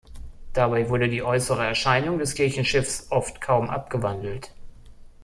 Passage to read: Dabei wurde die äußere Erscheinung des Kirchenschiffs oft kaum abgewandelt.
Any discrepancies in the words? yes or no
no